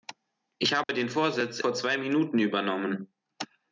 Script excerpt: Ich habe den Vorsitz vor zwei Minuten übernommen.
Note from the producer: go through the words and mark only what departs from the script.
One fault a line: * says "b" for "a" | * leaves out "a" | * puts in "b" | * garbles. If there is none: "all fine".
all fine